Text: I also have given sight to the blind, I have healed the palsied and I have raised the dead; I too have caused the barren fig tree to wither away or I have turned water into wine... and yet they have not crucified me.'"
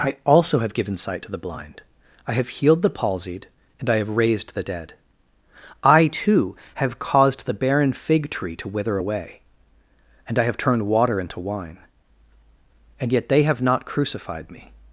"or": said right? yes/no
no